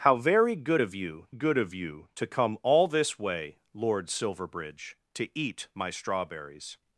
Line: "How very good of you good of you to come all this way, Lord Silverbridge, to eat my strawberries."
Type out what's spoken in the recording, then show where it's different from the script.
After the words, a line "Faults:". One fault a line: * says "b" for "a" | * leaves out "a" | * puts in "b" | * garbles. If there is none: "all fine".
"How very good of you good of you to come all this way, Lord Silverbridge, to eat my strawberries."
Faults:
all fine